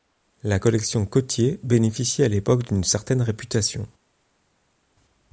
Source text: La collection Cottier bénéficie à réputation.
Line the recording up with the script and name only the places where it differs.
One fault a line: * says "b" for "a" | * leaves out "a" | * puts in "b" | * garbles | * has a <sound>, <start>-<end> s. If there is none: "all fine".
* puts in "l'époque d'une certaine"